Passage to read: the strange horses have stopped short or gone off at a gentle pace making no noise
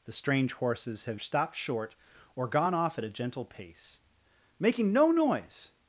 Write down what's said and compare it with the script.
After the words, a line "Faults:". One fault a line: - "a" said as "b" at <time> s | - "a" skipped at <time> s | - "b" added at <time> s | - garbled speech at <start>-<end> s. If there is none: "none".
the strange horses have stopped short or gone off at a gentle pace making no noise
Faults:
none